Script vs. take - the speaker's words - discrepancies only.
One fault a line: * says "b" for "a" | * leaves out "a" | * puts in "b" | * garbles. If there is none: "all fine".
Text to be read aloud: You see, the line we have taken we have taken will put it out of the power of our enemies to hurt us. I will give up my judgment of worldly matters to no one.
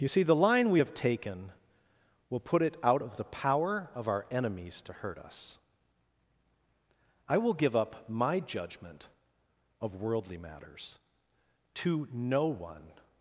* leaves out "we have taken"